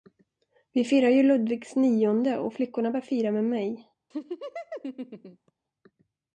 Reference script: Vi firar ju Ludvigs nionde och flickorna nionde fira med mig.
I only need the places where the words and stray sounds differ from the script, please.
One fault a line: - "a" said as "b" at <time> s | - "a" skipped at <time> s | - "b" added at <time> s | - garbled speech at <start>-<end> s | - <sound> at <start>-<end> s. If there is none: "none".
- "nionde" said as "bör" at 2.9 s
- laugh at 4.1-5.5 s